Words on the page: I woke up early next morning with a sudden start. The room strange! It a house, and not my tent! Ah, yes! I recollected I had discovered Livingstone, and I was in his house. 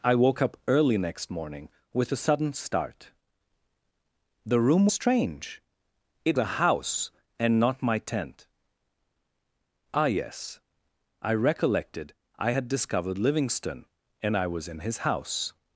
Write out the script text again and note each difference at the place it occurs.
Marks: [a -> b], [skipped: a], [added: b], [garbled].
I woke up early next morning with a sudden start. The room strange! It a house, and not my tent! Ah, yes! I recollected I had discovered Livingstone, and I was in his house.